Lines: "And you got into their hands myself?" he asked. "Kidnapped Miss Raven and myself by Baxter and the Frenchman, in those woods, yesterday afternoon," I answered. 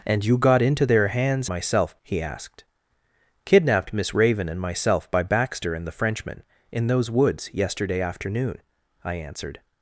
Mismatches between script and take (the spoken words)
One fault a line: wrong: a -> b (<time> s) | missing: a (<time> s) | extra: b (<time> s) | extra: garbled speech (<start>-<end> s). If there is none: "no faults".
no faults